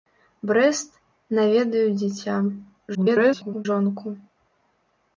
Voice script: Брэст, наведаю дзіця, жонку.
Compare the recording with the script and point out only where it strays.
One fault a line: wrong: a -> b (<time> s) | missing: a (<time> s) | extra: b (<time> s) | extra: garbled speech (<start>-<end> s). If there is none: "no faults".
extra: garbled speech (2.9-3.7 s)